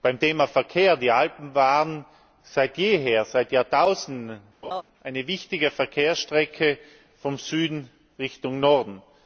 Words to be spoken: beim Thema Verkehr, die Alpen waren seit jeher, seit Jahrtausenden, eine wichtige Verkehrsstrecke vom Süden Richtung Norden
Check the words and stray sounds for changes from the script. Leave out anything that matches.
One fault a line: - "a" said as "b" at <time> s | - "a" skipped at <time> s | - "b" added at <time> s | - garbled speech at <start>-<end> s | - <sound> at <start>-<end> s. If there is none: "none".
- laugh at 4.6-4.8 s